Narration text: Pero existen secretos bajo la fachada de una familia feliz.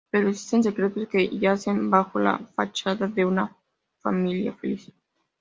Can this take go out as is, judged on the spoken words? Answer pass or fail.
fail